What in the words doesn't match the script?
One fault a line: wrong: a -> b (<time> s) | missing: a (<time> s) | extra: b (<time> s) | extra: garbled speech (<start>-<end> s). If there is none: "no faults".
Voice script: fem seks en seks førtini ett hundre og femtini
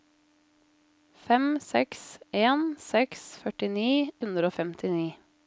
missing: ett (3.9 s)